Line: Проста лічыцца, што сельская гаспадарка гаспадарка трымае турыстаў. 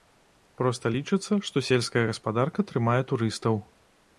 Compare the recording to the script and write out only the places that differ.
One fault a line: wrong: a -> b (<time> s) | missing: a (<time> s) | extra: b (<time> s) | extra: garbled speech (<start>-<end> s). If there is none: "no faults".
missing: гаспадарка (2.7 s)